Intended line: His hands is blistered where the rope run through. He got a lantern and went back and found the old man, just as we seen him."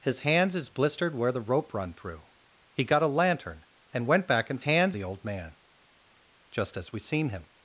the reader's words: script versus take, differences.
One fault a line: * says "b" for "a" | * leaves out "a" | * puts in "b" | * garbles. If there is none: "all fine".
* says "hands" for "found"